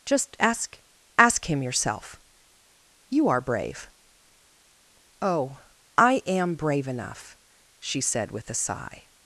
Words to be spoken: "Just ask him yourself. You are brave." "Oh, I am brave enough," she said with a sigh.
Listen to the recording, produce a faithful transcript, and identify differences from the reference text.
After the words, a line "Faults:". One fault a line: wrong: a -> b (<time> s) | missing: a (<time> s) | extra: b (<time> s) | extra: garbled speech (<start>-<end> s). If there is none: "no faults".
"Just ask ask him yourself. You are brave." "Oh, I am brave enough," she said with a sigh.
Faults:
extra: ask (1.2 s)